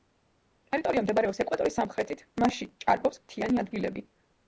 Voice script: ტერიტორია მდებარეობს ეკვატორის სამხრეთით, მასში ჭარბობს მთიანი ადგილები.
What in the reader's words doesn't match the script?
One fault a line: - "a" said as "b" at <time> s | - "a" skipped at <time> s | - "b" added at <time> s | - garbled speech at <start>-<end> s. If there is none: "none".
none